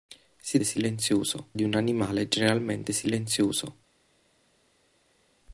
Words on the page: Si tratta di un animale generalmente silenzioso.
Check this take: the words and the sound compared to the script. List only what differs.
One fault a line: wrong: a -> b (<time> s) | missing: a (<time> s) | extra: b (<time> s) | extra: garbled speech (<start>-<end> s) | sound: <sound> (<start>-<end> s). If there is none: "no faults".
wrong: tratta -> silenzioso (0.6 s)